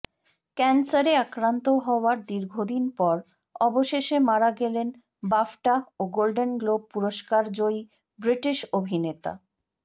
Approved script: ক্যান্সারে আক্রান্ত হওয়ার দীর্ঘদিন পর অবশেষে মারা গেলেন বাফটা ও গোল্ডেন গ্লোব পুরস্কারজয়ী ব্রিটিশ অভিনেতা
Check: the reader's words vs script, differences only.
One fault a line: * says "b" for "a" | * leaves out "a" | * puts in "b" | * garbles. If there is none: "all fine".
all fine